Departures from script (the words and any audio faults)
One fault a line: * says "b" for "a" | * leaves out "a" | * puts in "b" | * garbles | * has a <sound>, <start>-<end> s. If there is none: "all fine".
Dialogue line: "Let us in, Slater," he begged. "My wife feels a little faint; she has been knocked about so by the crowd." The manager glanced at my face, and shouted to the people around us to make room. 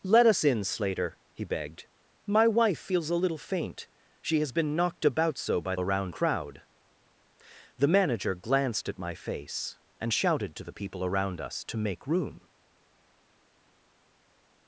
* says "around" for "the"